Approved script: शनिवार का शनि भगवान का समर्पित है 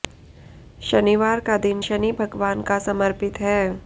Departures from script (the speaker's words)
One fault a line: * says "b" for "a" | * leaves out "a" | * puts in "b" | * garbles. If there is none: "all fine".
* puts in "दिन"